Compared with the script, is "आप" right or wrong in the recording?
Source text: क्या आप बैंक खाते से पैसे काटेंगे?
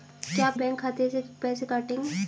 right